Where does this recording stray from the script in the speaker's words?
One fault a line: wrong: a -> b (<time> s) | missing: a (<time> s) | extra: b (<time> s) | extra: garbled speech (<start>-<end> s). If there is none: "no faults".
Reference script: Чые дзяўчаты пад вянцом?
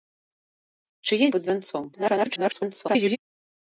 missing: дзяўчаты (1.3 s)
extra: garbled speech (1.9-3.2 s)